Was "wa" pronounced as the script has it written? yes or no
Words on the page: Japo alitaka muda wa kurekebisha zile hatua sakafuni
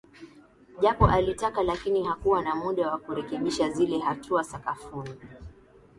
yes